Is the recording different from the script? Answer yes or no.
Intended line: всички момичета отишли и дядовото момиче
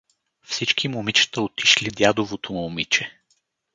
no